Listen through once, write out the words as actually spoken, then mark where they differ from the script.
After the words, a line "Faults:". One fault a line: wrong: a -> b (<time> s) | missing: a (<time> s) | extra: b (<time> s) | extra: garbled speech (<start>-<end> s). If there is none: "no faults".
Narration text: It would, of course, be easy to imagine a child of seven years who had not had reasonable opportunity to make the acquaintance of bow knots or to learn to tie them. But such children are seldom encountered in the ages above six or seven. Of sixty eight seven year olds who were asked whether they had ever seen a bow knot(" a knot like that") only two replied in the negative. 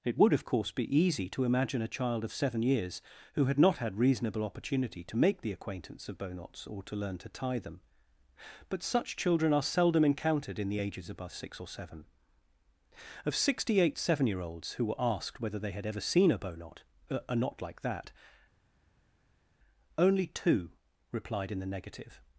It would, of course, be easy to imagine a child of seven years who had not had reasonable opportunity to make the acquaintance of bow knots or to learn to tie them. But such children are seldom encountered in the ages above six or seven. Of sixty eight seven year olds who were asked whether they had ever seen a bow knot(" a knot like that") only two replied in the negative.
Faults:
no faults